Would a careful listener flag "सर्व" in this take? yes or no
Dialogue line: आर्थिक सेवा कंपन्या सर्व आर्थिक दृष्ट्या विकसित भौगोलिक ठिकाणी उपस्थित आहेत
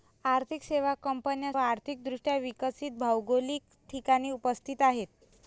yes